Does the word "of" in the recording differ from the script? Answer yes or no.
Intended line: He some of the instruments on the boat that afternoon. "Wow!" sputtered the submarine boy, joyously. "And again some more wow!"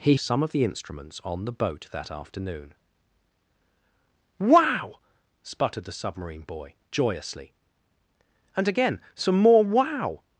no